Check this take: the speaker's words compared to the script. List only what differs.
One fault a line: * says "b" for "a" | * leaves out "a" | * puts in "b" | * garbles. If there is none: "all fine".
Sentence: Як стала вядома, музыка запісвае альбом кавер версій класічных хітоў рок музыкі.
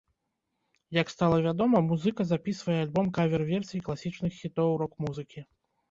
all fine